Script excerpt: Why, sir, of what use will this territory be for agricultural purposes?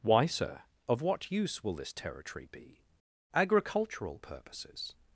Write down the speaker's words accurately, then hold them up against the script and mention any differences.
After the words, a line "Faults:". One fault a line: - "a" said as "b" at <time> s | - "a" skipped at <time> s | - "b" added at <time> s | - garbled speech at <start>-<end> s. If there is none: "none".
Why, sir, of what use will this territory be agricultural purposes?
Faults:
- "for" skipped at 2.8 s